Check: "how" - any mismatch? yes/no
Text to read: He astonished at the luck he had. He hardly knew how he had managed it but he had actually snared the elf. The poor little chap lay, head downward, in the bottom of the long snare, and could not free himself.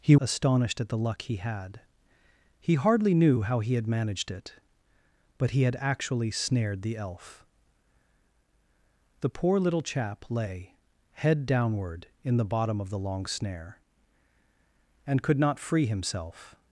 no